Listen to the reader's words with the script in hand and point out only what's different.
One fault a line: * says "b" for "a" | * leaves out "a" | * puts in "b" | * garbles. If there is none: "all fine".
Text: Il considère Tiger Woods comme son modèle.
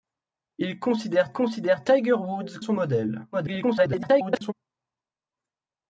* puts in "considère"
* leaves out "comme"
* garbles